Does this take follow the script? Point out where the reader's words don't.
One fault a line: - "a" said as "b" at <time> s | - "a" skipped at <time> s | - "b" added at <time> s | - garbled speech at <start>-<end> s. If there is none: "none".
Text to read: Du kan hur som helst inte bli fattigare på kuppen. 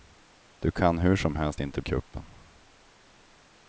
- "bli fattigare på" skipped at 1.8 s